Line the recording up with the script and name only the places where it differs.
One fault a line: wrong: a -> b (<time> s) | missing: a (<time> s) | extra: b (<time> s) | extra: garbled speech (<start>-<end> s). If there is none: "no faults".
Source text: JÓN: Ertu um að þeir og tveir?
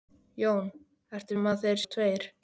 no faults